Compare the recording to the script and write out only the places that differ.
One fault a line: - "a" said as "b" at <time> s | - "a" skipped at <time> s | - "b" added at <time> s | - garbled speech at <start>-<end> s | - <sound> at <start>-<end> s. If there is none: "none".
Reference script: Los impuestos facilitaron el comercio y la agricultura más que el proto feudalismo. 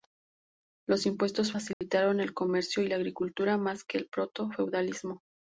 - dropout at 1.7-1.8 s